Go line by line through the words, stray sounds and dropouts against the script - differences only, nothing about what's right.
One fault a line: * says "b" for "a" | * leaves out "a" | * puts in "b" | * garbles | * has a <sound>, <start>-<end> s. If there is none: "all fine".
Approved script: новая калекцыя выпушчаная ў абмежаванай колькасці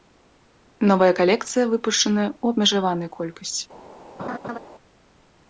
* has a laugh, 4.2-4.6 s